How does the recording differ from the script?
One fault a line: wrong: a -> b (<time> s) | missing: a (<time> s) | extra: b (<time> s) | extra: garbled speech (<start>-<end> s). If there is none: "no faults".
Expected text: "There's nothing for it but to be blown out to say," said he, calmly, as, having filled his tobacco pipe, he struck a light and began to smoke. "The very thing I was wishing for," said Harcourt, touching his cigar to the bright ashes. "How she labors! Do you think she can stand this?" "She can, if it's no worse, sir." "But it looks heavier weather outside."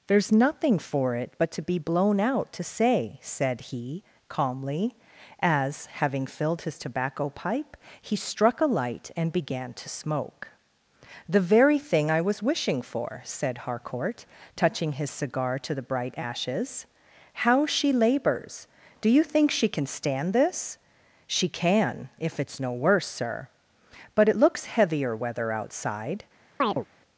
no faults